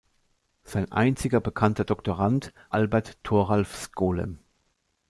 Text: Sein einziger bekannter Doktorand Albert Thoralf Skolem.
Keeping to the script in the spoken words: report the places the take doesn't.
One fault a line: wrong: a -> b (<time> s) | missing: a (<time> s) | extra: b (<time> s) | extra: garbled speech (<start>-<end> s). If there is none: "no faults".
no faults